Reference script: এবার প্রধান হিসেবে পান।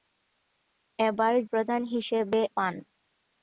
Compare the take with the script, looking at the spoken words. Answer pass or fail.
pass